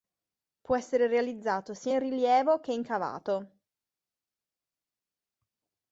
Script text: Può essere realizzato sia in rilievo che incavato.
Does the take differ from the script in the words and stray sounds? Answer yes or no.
no